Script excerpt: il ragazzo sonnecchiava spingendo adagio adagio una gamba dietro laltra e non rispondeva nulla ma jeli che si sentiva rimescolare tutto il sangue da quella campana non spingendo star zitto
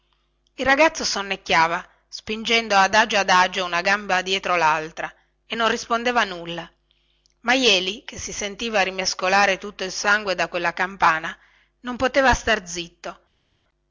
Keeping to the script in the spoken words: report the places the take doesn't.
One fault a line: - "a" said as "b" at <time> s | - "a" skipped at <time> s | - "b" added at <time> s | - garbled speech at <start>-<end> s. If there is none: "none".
- "spingendo" said as "poteva" at 12.0 s